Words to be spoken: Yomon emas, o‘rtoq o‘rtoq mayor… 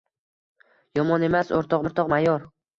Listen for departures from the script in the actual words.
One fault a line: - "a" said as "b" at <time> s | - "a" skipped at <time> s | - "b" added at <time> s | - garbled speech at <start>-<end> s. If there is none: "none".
none